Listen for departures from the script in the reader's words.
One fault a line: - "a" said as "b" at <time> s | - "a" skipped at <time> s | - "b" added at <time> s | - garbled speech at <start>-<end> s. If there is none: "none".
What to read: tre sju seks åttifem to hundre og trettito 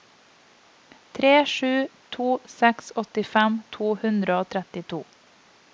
- "to" added at 2.1 s